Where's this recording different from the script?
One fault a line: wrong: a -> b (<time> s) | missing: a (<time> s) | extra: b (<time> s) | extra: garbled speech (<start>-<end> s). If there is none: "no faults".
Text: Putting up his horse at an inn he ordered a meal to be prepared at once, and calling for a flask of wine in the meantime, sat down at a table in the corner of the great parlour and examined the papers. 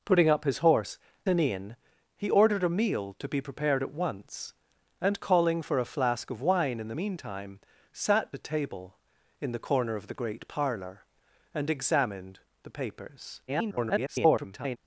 missing: at (1.0 s)
missing: down at (8.3 s)
extra: garbled speech (13.5-14.8 s)